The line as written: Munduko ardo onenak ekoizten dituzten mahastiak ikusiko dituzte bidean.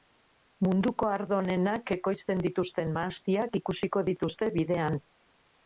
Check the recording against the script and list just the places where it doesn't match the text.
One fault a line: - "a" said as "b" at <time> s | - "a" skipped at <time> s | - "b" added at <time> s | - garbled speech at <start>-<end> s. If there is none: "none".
none